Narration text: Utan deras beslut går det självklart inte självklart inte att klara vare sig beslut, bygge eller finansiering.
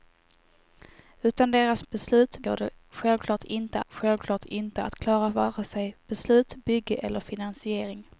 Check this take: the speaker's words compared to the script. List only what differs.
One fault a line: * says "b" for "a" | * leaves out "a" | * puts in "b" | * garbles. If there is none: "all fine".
all fine